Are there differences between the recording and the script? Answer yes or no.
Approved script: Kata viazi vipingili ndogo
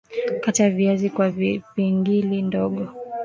yes